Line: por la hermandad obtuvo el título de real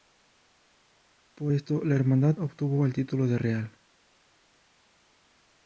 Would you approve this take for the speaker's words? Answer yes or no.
no